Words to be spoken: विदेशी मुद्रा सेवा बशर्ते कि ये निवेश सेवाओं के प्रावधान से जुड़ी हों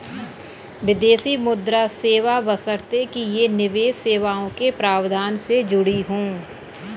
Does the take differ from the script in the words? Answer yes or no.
no